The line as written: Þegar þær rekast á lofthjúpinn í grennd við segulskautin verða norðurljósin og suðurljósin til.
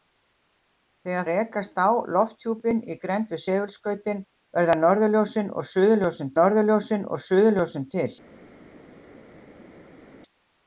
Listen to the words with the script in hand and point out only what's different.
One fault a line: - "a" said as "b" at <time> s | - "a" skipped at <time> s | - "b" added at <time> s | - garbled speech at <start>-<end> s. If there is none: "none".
- "þær" skipped at 1.3 s
- "norðurljósin og suðurljósin" added at 6.4 s